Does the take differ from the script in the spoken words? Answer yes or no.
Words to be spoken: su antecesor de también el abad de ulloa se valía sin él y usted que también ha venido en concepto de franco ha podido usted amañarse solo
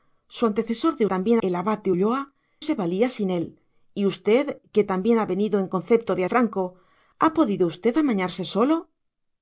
no